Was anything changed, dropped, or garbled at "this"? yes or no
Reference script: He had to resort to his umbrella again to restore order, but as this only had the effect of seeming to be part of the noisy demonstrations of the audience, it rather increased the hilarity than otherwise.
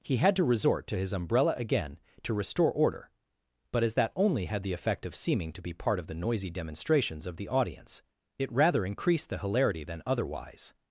yes